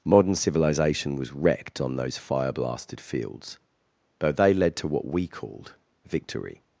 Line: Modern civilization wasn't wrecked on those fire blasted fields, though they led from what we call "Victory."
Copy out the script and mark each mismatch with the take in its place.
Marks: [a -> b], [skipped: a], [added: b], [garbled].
Modern civilization [wasn't -> was] wrecked on those fire blasted fields, though they led [from -> to] what we [call -> called] "Victory."